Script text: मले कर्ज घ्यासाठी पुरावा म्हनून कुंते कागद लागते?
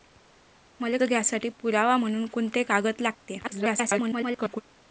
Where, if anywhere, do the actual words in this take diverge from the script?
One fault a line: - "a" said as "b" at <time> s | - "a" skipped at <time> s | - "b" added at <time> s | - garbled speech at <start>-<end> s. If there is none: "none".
- "कर्ज" skipped at 1.0 s
- garbled speech at 3.4-4.6 s